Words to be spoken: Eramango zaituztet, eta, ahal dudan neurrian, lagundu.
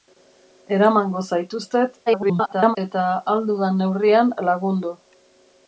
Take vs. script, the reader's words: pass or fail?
fail